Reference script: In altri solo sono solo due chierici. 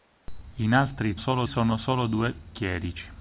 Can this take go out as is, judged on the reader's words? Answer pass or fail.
pass